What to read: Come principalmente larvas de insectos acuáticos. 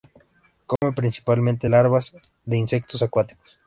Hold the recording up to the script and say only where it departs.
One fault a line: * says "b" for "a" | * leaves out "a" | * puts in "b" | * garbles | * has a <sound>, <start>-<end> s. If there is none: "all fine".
* has a dropout, 0.8-0.8 s